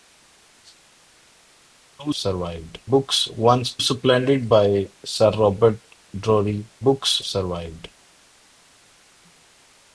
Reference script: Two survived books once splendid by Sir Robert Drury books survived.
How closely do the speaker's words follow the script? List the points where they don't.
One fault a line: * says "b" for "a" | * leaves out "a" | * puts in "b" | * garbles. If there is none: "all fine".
all fine